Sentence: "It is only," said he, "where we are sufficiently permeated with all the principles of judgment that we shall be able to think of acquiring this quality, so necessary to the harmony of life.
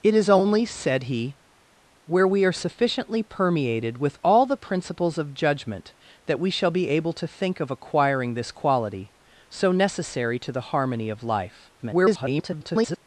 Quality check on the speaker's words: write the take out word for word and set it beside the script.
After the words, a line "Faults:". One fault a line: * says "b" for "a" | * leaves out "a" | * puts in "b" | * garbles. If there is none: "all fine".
"It is only," said he, "where we are sufficiently permeated with all the principles of judgment that we shall be able to think of acquiring this quality, so necessary to the harmony of life. [garbled]
Faults:
* garbles